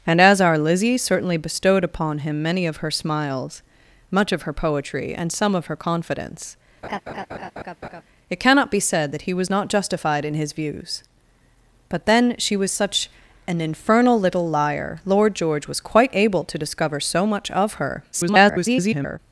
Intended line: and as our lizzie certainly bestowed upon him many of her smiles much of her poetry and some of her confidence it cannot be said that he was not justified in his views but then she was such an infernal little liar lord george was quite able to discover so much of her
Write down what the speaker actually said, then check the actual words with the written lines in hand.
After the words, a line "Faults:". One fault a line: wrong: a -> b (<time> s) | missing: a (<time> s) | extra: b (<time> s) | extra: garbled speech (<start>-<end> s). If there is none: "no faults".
and as our lizzie certainly bestowed upon him many of her smiles much of her poetry and some of her confidence it cannot be said that he was not justified in his views but then she was such an infernal little liar lord george was quite able to discover so much of her [garbled]
Faults:
extra: garbled speech (18.1-19.2 s)